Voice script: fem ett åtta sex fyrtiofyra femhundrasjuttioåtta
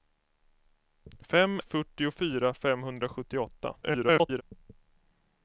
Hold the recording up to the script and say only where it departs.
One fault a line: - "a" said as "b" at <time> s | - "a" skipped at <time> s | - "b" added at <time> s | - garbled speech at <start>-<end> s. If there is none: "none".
- "ett åtta sex" skipped at 1.6 s
- garbled speech at 3.8-4.4 s